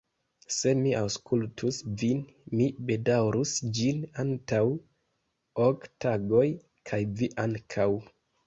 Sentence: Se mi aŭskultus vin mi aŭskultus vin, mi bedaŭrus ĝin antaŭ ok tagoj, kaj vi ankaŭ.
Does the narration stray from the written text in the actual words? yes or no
yes